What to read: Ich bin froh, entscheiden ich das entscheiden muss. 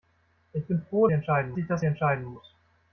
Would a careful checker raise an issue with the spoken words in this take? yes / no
no